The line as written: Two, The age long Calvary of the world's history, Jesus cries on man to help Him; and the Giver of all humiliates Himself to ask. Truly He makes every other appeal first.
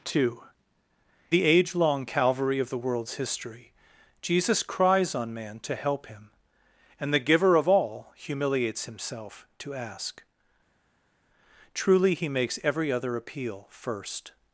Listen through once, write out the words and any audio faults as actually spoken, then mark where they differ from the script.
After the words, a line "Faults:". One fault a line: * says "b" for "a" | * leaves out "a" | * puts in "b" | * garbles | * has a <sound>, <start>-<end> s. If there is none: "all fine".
Two, The age long Calvary of the world's history, Jesus cries on man to help Him; and the Giver of all humiliates Himself to ask. Truly He makes every other appeal first.
Faults:
all fine